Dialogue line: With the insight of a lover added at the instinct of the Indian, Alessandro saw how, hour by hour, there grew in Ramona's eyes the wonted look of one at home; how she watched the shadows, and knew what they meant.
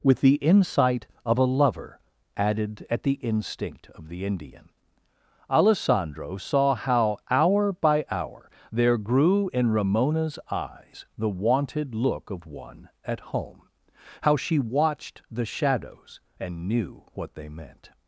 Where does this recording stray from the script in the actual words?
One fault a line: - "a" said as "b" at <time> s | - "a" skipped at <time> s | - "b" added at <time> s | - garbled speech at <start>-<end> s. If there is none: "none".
none